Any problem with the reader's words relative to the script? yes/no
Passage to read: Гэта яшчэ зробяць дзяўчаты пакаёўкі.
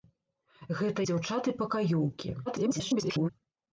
yes